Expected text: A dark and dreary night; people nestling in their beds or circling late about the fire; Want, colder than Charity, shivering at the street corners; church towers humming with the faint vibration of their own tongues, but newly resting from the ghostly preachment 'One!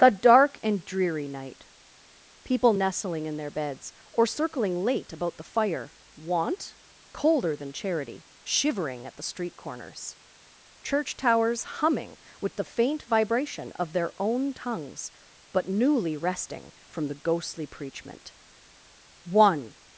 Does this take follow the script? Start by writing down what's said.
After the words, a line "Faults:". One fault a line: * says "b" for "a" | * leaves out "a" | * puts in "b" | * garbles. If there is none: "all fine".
The dark and dreary night; people nestling in their beds or circling late about the fire; Want, colder than Charity, shivering at the street corners; church towers humming with the faint vibration of their own tongues, but newly resting from the ghostly preachment 'One!
Faults:
* says "The" for "A"